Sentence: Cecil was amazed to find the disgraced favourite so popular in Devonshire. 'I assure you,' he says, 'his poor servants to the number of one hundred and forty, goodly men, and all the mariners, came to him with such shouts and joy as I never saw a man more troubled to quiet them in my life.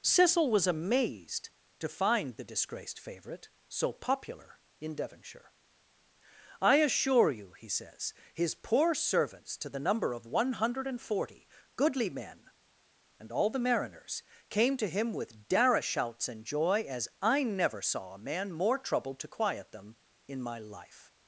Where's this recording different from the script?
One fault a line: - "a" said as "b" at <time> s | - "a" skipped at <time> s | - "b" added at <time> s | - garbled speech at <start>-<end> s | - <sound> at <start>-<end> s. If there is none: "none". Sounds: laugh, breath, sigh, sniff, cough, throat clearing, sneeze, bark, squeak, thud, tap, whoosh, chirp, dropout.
- "such" said as "dara" at 15.5 s